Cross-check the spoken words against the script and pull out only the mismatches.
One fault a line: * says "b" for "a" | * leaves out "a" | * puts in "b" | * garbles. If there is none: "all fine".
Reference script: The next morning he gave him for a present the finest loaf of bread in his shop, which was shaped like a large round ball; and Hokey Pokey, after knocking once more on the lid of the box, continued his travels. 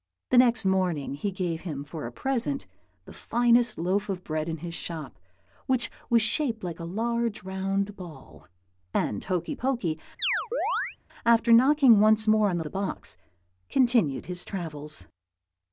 * leaves out "lid of"